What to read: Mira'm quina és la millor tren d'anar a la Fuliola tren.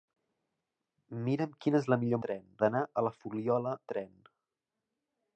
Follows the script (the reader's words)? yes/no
yes